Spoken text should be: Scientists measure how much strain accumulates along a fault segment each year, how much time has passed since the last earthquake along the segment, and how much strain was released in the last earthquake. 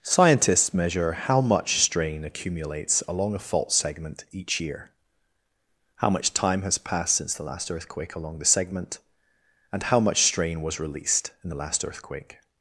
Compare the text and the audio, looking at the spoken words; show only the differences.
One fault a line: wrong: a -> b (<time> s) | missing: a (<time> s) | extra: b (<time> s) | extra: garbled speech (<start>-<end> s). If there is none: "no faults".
no faults